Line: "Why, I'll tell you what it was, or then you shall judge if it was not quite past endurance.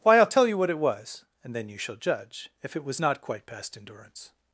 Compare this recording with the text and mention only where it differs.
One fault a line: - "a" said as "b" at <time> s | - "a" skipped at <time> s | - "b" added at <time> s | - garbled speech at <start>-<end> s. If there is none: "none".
- "or" said as "and" at 1.4 s